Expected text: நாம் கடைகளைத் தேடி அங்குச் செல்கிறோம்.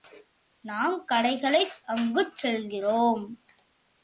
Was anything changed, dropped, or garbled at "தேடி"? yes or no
yes